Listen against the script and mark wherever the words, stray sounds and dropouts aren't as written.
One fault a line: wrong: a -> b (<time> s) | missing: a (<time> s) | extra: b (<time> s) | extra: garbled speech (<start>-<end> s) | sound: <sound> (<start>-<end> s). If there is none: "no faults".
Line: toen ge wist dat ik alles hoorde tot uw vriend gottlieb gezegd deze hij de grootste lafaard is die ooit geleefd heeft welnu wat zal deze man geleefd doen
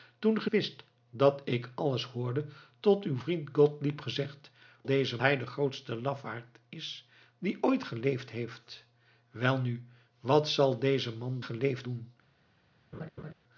sound: laugh (12.9-13.3 s)